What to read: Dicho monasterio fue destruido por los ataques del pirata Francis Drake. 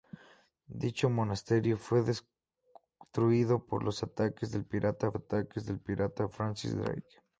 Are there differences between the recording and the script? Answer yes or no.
yes